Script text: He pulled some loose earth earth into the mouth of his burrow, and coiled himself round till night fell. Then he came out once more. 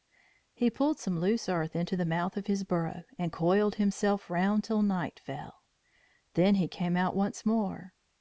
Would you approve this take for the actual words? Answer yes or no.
no